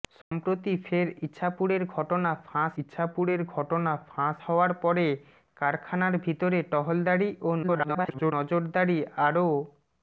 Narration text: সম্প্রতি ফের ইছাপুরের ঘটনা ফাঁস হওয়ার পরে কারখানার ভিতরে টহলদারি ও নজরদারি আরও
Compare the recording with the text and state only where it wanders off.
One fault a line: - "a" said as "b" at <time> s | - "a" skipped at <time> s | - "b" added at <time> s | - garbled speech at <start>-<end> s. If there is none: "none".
- "ইছাপুরের ঘটনা ফাঁস" added at 2.8 s
- garbled speech at 7.6-8.3 s